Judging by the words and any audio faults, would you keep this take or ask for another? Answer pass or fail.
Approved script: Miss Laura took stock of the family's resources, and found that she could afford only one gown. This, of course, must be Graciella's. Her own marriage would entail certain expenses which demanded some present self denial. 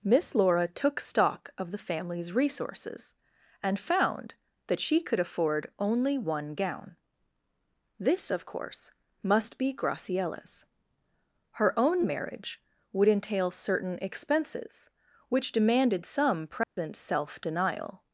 fail